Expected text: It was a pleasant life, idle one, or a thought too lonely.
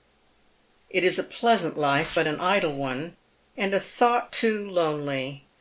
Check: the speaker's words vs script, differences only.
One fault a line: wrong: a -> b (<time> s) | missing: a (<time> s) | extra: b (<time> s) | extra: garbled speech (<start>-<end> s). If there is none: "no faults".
wrong: was -> is (1.0 s)
extra: but an (2.1 s)
wrong: or -> and (3.5 s)